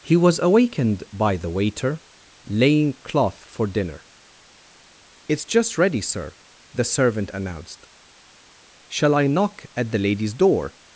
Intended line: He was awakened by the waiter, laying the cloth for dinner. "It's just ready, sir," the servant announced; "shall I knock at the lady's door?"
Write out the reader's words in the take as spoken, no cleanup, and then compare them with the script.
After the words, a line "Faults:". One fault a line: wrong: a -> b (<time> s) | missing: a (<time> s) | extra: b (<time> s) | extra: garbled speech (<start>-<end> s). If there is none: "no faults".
He was awakened by the waiter, laying cloth for dinner. "It's just ready, sir," the servant announced; "shall I knock at the lady's door?"
Faults:
missing: the (2.9 s)